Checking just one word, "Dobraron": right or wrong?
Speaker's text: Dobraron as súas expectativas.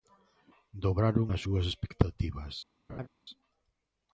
right